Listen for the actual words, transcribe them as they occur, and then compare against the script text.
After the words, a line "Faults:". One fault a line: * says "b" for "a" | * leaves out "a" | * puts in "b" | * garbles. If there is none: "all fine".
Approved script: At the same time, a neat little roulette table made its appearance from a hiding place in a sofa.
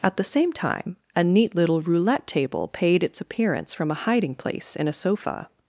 At the same time, a neat little roulette table paid its appearance from a hiding place in a sofa.
Faults:
* says "paid" for "made"